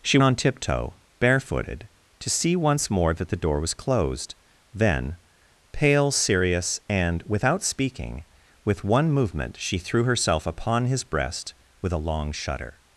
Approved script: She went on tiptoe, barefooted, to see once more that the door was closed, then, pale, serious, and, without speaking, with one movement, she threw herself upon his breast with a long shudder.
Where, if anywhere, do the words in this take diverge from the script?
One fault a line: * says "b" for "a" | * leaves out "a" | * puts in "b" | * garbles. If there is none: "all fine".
* leaves out "went"